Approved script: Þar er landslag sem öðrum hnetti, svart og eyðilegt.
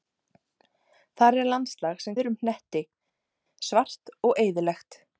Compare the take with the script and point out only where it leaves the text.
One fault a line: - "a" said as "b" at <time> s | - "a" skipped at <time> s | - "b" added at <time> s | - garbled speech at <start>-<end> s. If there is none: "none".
none